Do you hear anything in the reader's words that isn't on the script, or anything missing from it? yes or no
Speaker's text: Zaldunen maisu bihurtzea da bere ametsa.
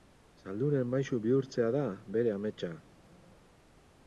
no